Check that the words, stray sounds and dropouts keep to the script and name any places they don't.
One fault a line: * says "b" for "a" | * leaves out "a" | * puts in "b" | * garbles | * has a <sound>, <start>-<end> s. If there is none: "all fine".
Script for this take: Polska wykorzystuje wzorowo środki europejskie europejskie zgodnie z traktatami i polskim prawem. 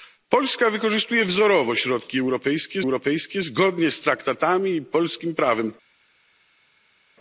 all fine